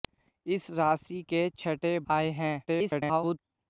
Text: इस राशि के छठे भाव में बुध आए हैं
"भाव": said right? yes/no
no